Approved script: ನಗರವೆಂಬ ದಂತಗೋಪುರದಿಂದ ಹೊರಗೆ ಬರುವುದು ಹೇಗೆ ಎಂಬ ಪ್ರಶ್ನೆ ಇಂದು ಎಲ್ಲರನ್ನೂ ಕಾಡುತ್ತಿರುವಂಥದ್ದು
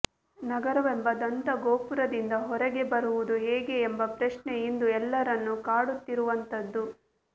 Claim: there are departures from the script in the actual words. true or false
false